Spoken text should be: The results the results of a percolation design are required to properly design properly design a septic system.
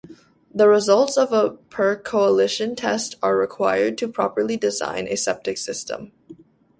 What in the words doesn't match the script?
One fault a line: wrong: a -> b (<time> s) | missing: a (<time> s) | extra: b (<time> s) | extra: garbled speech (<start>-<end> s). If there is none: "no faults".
missing: the results (1.1 s)
wrong: design -> test (2.8 s)
missing: properly design (5.1 s)